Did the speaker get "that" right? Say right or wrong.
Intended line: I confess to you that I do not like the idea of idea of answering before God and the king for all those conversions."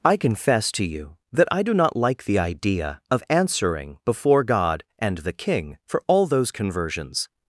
right